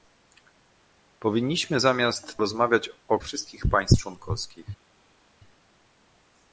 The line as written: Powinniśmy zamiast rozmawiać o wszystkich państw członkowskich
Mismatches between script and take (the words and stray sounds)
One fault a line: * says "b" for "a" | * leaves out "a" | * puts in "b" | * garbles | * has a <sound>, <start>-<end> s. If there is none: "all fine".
all fine